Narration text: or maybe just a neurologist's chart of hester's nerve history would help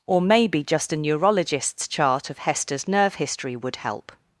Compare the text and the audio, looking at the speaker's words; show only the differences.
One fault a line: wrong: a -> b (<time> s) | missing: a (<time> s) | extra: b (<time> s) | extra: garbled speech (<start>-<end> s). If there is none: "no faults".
no faults